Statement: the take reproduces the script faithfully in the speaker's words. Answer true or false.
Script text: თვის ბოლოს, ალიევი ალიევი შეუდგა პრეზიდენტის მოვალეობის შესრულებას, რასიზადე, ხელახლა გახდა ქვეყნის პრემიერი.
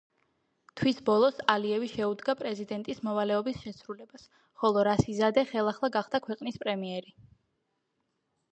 false